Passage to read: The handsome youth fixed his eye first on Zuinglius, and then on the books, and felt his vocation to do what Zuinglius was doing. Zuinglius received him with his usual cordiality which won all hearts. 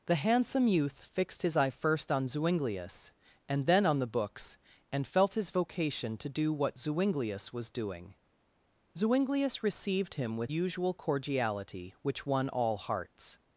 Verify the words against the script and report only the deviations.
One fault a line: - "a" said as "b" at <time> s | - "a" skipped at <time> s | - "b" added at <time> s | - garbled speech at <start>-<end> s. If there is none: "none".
- "his" skipped at 10.5 s